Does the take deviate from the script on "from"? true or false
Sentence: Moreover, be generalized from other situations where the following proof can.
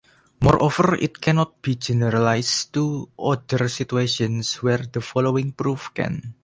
true